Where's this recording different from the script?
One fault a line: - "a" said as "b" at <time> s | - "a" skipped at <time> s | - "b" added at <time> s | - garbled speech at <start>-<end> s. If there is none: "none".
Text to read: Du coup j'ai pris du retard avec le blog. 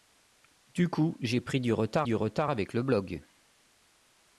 - "du retard" added at 2.0 s